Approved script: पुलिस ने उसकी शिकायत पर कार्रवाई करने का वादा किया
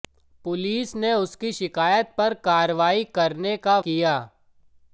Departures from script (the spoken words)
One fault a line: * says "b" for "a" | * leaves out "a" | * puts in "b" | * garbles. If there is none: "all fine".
* leaves out "वादा"